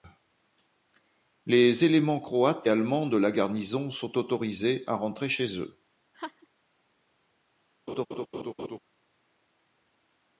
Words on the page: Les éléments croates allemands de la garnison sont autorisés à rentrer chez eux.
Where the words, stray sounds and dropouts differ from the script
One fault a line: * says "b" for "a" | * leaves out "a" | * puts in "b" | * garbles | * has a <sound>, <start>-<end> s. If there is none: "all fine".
* has a laugh, 6.1-6.5 s
* has a laugh, 7.9-8.8 s